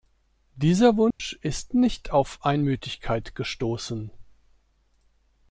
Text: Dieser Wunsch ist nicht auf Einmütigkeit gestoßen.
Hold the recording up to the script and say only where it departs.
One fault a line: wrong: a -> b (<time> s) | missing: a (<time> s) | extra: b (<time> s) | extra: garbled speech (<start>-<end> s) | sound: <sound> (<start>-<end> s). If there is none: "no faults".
sound: dropout (1.1-1.2 s)